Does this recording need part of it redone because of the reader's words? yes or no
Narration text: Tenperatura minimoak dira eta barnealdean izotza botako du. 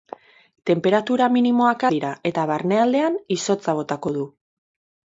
no